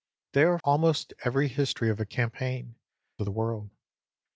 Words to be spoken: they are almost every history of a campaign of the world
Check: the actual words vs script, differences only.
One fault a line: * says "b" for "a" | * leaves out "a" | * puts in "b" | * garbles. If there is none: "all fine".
all fine